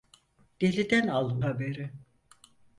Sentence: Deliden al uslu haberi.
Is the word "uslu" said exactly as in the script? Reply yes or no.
no